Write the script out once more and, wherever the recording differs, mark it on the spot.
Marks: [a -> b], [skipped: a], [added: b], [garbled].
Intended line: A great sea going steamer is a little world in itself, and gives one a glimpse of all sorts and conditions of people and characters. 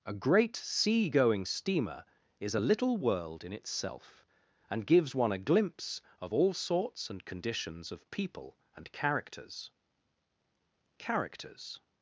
A great sea going steamer is a little world in itself, and gives one a glimpse of all sorts and conditions of people and characters. [added: characters]